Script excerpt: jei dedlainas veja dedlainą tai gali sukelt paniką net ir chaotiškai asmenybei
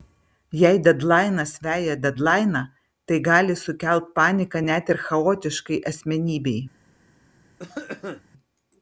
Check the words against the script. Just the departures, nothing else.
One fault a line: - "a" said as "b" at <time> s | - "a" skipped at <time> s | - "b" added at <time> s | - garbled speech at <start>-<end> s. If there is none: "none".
none